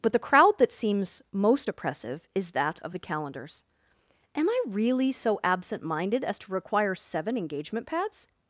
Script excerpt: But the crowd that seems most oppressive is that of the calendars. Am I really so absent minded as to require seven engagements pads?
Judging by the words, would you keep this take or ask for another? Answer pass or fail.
fail